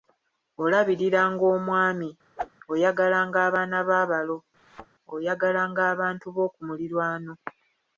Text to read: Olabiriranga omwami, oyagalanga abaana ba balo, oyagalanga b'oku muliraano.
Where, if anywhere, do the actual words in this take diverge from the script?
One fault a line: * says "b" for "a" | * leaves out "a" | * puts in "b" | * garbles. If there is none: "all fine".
* puts in "abantu"